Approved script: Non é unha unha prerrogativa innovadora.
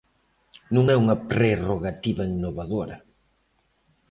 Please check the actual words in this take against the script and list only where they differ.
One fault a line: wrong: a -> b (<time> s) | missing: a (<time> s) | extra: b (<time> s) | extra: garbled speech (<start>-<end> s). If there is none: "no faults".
missing: unha (1.2 s)